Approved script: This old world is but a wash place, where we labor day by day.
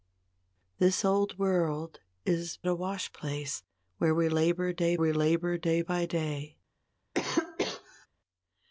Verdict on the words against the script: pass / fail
fail